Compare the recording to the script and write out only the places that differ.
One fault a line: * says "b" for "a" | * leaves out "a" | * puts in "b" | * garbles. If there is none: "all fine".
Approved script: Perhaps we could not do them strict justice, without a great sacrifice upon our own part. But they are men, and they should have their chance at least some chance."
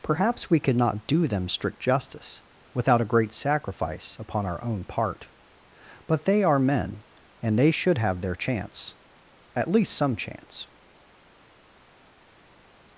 all fine